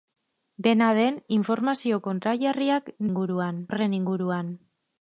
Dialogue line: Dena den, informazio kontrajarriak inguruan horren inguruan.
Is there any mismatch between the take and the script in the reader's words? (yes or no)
no